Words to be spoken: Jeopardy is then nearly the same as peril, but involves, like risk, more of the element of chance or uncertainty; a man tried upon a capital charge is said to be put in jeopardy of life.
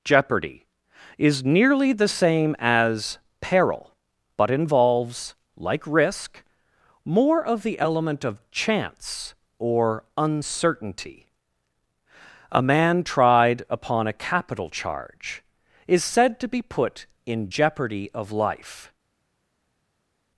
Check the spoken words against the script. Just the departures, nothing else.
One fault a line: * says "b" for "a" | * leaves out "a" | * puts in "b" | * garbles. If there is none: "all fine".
* leaves out "then"